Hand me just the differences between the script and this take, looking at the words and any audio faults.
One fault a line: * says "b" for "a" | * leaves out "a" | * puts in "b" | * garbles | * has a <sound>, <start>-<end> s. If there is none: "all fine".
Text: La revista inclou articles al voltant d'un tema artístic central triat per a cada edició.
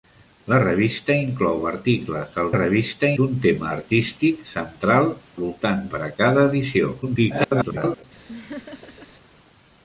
* says "revista" for "voltant"
* says "voltant" for "triat"
* garbles
* has a laugh, 8.3-9.1 s